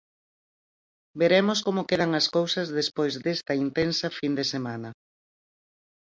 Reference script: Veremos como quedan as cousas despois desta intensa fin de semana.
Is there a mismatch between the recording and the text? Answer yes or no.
no